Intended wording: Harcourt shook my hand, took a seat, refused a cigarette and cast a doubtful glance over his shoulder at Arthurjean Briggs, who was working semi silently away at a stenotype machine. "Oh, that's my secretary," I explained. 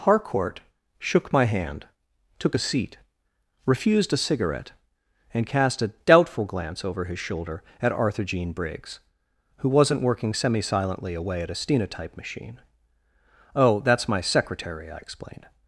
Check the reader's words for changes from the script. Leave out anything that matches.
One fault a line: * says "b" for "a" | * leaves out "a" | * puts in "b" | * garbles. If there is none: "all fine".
* says "wasn't" for "was"